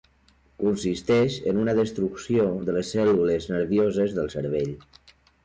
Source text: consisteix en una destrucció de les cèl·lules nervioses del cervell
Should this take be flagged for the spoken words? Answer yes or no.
no